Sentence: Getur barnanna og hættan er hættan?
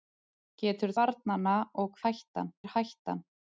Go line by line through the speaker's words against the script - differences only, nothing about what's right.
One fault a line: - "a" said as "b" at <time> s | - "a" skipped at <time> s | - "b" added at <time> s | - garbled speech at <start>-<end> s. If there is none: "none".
none